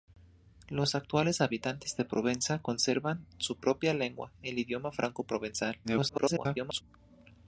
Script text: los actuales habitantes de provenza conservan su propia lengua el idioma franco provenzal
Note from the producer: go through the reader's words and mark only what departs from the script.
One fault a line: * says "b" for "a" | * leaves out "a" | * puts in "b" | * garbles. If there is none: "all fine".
* garbles